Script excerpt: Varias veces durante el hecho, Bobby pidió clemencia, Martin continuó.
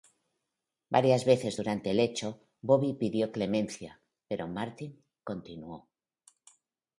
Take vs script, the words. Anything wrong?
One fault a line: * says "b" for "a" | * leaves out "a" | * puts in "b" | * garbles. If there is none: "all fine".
* puts in "pero"